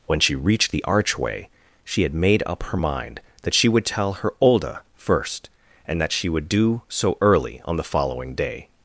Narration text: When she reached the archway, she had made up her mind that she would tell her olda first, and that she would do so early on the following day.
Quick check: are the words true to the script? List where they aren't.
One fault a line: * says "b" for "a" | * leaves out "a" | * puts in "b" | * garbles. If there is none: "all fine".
all fine